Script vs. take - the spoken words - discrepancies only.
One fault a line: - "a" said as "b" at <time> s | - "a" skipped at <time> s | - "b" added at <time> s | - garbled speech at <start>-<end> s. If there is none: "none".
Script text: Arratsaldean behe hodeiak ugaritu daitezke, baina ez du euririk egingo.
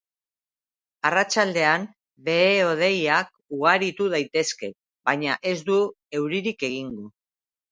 none